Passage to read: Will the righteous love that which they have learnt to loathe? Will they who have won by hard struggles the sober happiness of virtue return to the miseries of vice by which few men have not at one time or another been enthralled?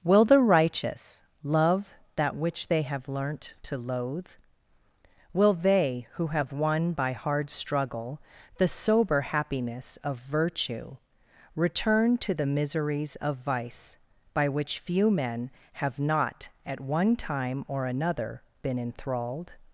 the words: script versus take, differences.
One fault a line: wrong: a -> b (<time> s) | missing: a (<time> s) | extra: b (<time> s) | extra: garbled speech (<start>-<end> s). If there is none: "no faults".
wrong: struggles -> struggle (7.5 s)